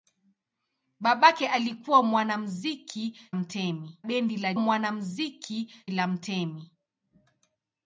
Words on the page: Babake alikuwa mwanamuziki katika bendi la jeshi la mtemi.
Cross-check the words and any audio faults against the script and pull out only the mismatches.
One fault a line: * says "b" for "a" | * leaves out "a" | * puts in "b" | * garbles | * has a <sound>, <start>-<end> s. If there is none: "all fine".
* says "mtemi" for "katika"
* says "mwanamuziki" for "jeshi"